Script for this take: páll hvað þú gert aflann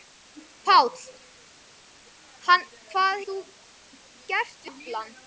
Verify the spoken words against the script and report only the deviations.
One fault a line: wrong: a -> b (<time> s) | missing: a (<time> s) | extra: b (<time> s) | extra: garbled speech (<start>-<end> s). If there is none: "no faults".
no faults